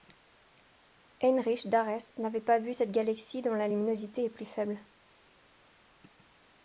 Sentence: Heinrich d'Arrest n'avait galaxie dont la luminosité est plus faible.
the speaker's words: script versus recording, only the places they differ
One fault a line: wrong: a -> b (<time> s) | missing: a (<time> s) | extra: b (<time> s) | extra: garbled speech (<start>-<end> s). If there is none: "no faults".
extra: pas vu cette (2.4 s)